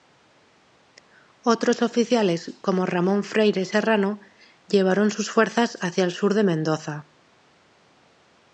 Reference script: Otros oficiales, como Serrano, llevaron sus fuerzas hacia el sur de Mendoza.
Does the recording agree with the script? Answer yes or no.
no